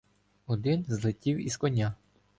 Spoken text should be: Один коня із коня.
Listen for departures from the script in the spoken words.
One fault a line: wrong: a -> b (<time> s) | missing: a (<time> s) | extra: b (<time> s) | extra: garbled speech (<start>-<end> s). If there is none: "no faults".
wrong: коня -> злетів (0.9 s)